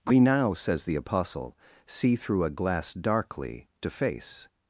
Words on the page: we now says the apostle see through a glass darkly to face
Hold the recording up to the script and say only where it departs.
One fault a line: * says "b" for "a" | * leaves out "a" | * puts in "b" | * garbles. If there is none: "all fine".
all fine